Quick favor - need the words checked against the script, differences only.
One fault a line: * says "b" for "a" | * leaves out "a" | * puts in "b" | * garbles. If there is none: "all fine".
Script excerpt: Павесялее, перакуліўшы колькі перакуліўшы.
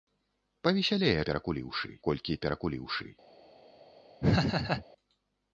all fine